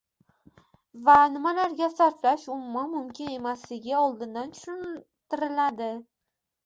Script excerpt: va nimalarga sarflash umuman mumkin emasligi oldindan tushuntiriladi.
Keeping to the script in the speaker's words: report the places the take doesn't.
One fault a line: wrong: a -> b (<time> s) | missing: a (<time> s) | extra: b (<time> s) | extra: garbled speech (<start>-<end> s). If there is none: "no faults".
no faults